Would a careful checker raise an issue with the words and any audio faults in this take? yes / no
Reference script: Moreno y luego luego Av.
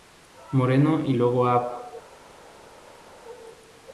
yes